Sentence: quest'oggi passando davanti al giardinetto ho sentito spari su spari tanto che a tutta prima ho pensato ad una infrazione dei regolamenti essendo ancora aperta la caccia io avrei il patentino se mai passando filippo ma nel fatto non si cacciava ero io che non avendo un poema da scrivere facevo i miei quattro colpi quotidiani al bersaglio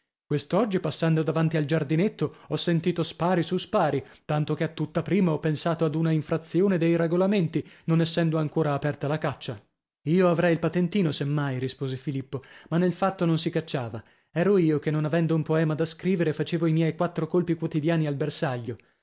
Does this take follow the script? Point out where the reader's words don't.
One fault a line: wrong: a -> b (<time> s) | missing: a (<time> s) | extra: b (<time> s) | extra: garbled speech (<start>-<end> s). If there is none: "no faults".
extra: non (7.8 s)
wrong: passando -> rispose (11.6 s)